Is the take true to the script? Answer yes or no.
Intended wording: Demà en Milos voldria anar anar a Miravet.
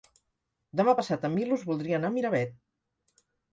no